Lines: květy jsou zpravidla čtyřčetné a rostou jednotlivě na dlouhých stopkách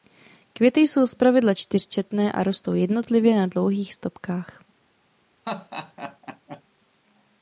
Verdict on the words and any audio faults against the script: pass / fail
fail